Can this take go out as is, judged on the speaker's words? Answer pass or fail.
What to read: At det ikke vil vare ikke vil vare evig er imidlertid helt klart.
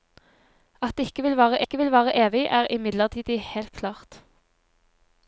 pass